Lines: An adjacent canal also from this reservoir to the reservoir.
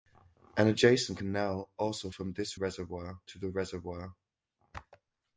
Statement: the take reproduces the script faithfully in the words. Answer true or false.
true